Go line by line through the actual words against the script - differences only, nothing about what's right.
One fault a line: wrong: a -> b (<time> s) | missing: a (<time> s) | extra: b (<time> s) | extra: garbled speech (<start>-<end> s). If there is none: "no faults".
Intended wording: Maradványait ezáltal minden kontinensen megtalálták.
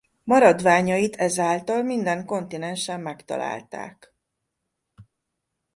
no faults